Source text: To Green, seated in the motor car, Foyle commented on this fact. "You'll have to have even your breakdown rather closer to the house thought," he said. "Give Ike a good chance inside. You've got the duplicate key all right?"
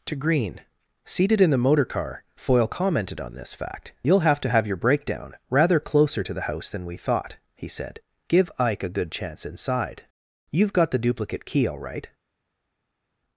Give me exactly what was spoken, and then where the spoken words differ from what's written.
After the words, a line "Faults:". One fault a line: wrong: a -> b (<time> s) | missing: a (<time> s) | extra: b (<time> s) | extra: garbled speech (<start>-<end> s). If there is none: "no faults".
To Green, seated in the motor car, Foyle commented on this fact. "You'll have to have your breakdown rather closer to the house than we thought," he said. "Give Ike a good chance inside. You've got the duplicate key all right?"
Faults:
missing: even (4.7 s)
extra: than we (6.7 s)